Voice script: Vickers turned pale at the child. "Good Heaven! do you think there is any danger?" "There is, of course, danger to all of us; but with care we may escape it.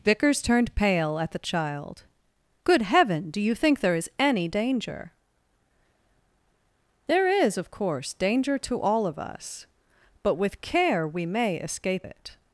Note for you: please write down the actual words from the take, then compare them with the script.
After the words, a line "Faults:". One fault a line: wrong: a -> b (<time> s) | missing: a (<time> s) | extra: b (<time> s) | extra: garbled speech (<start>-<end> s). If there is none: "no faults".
Vickers turned pale at the child. "Good Heaven! do you think there is any danger?" "There is, of course, danger to all of us; but with care we may escape it.
Faults:
no faults